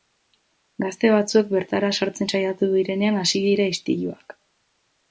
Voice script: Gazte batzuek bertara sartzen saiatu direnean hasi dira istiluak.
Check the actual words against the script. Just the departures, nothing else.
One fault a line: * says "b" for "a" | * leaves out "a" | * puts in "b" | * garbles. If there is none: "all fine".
all fine